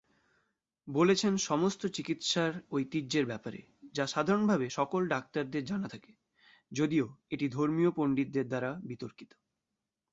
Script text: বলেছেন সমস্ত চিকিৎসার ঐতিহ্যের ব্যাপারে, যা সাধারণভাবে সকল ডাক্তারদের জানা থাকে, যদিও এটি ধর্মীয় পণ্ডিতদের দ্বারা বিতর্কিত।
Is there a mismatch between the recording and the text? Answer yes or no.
no